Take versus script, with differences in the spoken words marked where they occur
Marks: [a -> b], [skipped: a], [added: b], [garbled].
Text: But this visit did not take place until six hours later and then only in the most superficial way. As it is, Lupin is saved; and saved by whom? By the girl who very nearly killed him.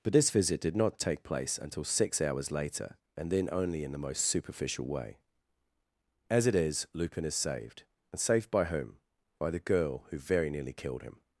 But this visit did not take place until six hours later and then only in the most superficial way. As it is, Lupin is saved; and saved by whom? By the girl who very nearly killed him.